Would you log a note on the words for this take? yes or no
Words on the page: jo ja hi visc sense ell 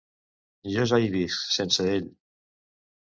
no